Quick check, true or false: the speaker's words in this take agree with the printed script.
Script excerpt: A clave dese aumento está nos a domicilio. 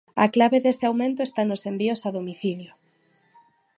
false